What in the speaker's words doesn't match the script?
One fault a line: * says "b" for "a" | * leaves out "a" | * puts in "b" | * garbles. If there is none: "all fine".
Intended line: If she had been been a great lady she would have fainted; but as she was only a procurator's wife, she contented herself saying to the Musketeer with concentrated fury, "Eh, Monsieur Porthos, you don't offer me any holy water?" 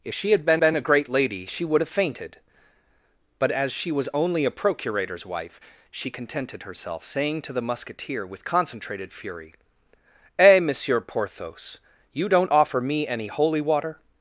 all fine